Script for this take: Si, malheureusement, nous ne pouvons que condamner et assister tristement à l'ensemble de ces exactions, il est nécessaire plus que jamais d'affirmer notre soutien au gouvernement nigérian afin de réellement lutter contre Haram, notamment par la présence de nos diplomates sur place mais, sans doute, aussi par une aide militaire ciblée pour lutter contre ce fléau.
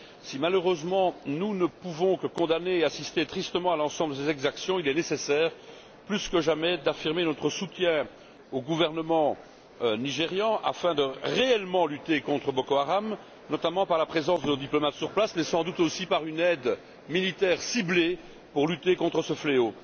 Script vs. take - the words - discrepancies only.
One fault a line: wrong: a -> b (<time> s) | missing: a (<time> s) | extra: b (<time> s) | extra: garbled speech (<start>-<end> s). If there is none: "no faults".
extra: Boko (12.5 s)